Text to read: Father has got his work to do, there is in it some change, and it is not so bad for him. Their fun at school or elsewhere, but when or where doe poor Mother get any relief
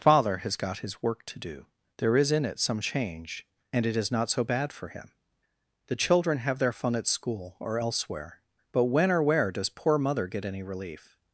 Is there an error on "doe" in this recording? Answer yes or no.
yes